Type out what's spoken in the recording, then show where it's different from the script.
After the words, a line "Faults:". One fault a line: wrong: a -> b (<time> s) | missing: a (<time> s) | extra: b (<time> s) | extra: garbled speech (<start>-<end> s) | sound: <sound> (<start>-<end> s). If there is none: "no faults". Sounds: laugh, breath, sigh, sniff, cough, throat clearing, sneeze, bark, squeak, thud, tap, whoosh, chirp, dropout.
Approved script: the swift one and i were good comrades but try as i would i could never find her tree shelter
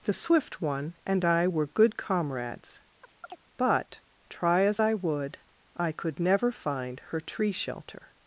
the swift one and i were good comrades but try as i would i could never find her tree shelter
Faults:
sound: chirp (3.0-3.4 s)